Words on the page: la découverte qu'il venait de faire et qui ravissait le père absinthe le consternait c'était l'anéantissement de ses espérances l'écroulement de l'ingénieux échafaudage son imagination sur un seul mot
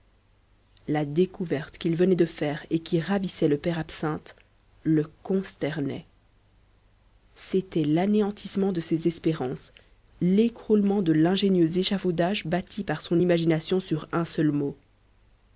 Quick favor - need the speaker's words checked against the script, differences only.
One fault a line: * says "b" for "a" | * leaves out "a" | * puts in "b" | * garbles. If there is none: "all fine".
* puts in "bâti par"